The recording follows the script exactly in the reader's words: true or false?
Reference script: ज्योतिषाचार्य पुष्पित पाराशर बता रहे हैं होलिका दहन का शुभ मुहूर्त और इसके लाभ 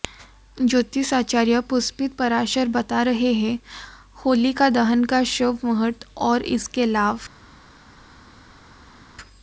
true